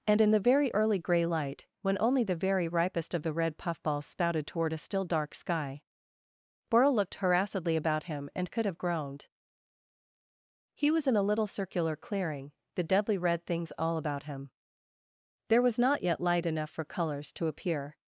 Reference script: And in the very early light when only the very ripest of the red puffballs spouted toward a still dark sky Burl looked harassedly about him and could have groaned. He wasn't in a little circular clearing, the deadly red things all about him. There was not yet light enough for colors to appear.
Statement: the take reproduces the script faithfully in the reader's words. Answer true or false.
false